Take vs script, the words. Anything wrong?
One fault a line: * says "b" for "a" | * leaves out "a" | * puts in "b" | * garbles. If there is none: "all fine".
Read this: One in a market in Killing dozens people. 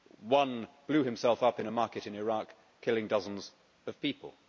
* puts in "blew himself up"
* puts in "Iraq"
* puts in "of"